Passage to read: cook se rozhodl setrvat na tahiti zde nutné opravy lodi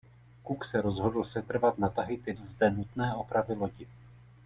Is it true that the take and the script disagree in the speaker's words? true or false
false